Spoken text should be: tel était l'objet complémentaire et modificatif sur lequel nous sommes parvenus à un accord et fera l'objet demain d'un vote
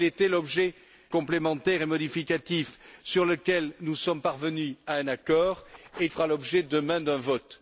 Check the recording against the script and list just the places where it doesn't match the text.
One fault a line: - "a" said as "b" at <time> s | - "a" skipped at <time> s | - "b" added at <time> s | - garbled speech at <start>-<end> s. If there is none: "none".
none